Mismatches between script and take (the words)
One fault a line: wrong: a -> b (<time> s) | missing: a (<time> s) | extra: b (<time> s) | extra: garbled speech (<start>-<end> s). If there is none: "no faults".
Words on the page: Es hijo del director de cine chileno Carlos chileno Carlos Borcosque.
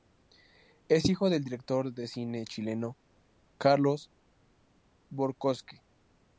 missing: chileno Carlos (4.1 s)